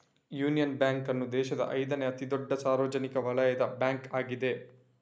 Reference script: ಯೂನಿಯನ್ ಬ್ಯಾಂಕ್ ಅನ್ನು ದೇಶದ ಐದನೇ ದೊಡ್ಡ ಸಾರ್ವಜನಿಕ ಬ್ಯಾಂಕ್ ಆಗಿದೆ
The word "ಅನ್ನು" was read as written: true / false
true